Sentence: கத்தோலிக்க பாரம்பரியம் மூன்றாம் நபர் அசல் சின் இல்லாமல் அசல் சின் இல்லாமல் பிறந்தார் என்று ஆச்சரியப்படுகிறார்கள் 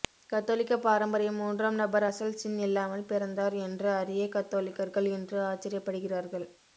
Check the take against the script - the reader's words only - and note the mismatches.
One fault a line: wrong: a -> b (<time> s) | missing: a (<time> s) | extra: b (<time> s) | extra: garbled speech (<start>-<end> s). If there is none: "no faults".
wrong: அசல் சின் இல்லாமல் பிறந்தார் என்று -> பிறந்தார் என்று அறிய கத்தோலிக்கர்கள் இன்று (3.0 s)